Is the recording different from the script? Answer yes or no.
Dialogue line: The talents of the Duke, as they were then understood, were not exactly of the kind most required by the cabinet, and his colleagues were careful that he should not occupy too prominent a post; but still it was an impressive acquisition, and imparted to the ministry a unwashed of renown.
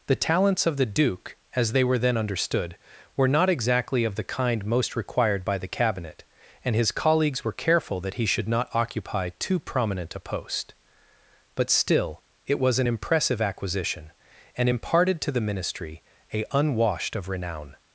no